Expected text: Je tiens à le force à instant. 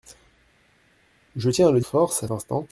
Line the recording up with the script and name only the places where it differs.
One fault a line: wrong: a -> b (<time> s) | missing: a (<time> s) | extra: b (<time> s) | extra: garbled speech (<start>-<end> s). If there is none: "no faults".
no faults